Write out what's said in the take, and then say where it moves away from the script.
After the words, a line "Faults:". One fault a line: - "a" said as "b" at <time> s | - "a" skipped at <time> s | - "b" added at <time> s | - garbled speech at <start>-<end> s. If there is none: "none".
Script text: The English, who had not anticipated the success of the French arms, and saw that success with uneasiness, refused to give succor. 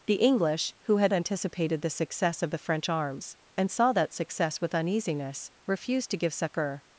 The English, who had anticipated the success of the French arms, and saw that success with uneasiness, refused to give succor.
Faults:
- "not" skipped at 1.1 s